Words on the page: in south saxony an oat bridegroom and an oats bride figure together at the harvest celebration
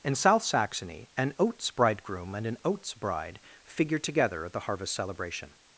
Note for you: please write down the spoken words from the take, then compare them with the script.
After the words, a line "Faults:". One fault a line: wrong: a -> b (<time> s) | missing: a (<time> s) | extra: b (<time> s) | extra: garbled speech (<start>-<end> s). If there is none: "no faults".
in south saxony an oats bridegroom and an oats bride figure together at the harvest celebration
Faults:
wrong: oat -> oats (1.4 s)